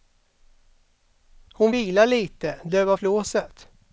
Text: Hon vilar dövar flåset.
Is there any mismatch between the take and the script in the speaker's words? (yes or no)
yes